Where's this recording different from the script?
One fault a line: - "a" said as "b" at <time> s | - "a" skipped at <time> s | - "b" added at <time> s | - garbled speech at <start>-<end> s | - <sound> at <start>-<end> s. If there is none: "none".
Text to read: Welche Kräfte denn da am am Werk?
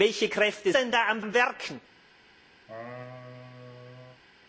- laugh at 2.7-4.2 s